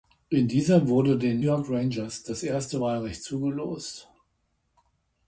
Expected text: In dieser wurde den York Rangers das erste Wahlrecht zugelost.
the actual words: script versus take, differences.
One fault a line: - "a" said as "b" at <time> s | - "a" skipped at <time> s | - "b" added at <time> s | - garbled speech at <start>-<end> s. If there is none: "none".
none